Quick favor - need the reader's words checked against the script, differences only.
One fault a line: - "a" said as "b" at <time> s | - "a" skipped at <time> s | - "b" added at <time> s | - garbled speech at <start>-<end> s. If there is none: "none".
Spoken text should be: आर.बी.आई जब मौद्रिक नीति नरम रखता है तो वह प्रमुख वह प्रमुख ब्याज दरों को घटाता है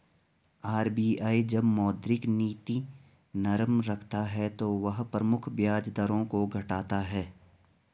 - "वह प्रमुख" skipped at 5.5 s